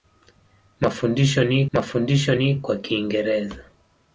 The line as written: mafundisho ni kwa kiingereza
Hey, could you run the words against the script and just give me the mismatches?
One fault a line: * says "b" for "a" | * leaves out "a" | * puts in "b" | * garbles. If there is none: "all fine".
* puts in "mafundisho ni"